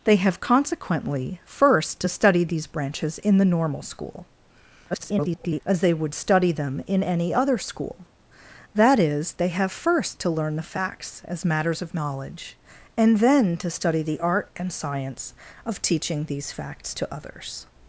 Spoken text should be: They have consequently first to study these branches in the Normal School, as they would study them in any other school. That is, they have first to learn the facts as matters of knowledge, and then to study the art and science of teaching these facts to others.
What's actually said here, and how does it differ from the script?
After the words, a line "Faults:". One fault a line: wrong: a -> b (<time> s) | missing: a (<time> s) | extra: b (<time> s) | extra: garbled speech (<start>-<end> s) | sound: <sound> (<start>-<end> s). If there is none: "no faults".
They have consequently first to study these branches in the Normal School, [garbled] as they would study them in any other school. That is, they have first to learn the facts as matters of knowledge, and then to study the art and science of teaching these facts to others.
Faults:
extra: garbled speech (4.9-5.6 s)